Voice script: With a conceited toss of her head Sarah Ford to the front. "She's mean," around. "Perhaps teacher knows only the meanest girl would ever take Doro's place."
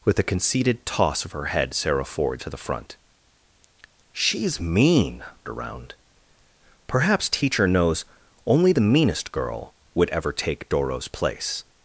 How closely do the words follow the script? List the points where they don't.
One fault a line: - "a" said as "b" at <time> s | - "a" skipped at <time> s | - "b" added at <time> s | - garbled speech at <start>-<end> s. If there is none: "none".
none